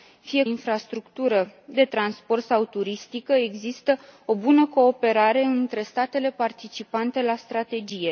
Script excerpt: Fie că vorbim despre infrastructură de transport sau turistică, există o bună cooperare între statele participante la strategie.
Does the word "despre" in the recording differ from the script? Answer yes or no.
yes